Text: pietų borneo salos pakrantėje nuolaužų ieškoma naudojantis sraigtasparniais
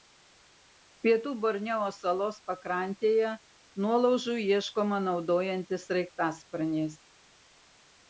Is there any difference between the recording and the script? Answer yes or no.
no